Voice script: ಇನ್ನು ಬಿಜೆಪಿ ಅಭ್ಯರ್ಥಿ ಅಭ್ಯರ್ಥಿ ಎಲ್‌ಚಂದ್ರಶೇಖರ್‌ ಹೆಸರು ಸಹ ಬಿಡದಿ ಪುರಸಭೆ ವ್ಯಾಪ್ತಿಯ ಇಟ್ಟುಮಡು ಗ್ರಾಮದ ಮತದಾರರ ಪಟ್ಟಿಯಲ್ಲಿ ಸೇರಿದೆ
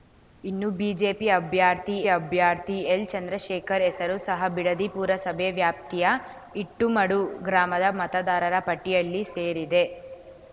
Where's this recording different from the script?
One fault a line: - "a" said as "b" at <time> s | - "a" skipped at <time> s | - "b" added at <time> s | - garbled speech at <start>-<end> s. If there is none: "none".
none